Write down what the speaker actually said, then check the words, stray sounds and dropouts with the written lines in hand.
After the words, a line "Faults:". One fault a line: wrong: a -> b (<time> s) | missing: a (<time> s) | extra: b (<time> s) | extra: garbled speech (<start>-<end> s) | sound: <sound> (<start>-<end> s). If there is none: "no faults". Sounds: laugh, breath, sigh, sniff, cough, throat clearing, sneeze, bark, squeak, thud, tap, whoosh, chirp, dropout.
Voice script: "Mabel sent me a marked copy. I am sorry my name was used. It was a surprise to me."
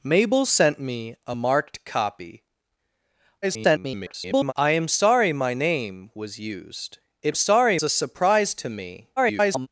"Mabel sent me a marked copy. [garbled] I am sorry my name was used. It sorry a surprise to me." [garbled]
Faults:
extra: garbled speech (3.4-4.5 s)
wrong: was -> sorry (7.4 s)
extra: garbled speech (9.2-9.7 s)